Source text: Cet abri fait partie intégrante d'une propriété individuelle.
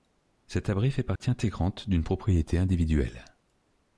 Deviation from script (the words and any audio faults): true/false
true